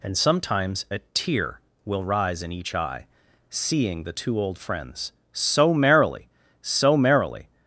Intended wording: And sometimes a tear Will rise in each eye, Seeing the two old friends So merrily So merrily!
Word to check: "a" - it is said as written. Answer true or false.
true